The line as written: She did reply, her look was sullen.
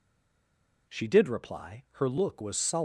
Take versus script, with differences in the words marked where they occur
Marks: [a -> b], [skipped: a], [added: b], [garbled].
She did reply, her look was sullen.